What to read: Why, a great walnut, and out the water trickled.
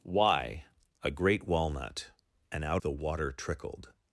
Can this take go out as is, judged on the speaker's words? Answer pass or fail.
pass